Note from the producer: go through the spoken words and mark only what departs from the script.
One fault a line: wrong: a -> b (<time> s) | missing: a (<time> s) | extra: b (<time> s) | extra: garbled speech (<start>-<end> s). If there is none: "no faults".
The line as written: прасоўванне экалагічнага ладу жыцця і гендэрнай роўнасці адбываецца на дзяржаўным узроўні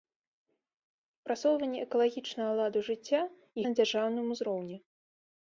missing: гендэрнай роўнасці адбываецца (3.6 s)